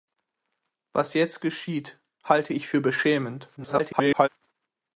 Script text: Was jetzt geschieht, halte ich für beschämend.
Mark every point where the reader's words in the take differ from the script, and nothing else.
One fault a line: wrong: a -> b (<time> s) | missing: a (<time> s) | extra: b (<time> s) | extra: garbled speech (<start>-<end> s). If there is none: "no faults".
extra: garbled speech (3.6-4.3 s)